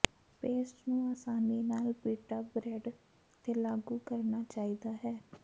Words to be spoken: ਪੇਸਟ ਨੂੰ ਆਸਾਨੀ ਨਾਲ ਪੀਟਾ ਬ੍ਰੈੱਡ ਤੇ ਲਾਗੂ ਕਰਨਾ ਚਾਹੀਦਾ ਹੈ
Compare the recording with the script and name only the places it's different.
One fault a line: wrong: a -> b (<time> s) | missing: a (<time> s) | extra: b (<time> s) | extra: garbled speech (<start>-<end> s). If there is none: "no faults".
no faults